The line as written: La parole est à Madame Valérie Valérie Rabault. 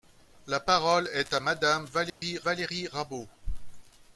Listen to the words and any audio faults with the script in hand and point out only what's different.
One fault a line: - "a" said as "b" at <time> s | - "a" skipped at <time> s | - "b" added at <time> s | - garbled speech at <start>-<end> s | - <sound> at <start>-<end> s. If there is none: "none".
- dropout at 2.1-2.2 s